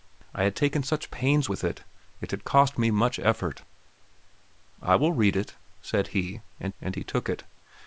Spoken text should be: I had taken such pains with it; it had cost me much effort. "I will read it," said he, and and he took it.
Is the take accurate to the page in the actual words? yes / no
yes